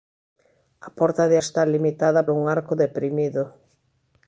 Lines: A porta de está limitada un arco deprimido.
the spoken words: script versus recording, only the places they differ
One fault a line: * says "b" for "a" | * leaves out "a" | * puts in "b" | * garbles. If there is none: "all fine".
all fine